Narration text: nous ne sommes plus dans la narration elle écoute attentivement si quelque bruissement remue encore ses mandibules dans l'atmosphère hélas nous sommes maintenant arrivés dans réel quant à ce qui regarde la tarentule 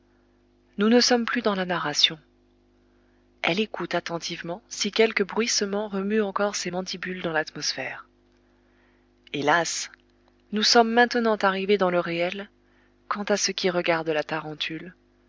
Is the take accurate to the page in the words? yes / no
no